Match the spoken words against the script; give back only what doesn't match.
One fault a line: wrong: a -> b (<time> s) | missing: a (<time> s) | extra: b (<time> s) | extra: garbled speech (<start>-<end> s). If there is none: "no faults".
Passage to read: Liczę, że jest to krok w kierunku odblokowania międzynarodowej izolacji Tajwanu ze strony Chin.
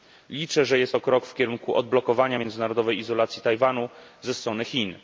no faults